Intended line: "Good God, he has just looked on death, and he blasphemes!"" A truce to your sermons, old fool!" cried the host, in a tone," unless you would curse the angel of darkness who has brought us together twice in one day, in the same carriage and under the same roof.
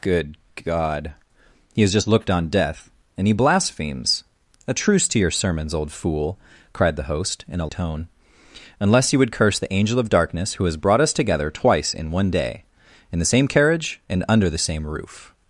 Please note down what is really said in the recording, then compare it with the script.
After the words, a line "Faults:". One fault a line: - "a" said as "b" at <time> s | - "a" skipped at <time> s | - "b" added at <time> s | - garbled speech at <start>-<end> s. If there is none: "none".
"Good God, he has just looked on death, and he blasphemes!"" A truce to your sermons, old fool!" cried the host, in a tone," unless you would curse the angel of darkness who has brought us together twice in one day, in the same carriage and under the same roof.
Faults:
none